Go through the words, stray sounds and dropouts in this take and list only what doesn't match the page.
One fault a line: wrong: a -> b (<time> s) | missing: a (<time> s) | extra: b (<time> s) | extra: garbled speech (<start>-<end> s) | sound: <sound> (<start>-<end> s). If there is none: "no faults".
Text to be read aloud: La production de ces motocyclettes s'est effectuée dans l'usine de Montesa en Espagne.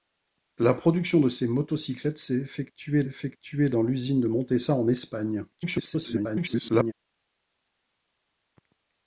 extra: effectuée (3.0 s)
extra: garbled speech (5.5-6.9 s)